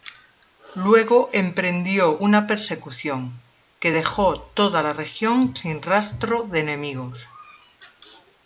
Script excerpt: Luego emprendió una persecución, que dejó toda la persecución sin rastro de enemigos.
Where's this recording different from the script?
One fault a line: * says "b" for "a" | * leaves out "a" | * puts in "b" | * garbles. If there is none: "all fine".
* says "región" for "persecución"